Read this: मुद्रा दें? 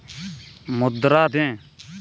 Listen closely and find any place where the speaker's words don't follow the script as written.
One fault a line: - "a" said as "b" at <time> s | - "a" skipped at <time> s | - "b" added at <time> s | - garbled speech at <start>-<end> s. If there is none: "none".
none